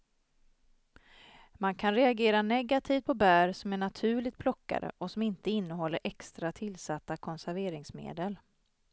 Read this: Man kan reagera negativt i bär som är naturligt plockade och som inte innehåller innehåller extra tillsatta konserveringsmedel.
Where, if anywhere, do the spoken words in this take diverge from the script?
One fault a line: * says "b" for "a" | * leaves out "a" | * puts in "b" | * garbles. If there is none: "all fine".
* says "på" for "i"
* leaves out "innehåller"